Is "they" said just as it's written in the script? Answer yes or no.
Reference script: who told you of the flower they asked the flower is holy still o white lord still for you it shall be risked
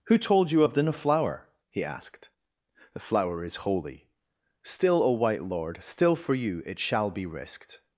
no